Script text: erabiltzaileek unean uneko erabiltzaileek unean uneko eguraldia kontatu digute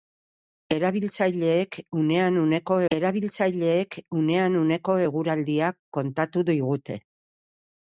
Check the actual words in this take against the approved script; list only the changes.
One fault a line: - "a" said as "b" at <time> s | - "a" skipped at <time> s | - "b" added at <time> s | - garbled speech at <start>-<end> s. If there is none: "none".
none